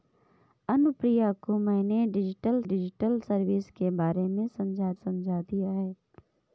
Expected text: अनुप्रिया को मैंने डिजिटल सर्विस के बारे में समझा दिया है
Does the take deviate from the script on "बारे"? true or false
false